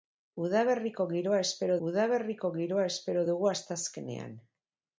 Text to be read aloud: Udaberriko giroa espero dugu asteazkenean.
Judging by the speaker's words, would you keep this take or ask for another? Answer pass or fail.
fail